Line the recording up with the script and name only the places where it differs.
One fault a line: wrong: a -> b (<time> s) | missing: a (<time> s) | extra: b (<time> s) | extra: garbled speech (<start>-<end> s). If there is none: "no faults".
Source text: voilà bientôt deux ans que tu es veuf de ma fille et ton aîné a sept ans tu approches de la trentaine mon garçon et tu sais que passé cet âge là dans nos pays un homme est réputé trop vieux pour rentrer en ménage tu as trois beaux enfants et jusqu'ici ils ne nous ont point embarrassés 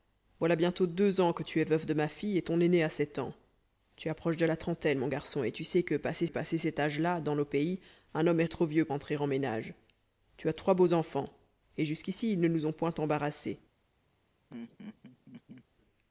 extra: passé (6.3 s)
missing: réputé (8.5 s)
missing: pour (8.9 s)